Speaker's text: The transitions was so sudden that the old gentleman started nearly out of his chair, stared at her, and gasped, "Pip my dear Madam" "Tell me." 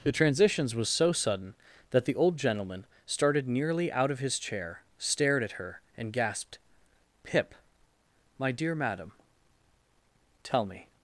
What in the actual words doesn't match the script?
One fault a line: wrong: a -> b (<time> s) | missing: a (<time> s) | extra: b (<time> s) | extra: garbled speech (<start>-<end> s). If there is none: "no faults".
no faults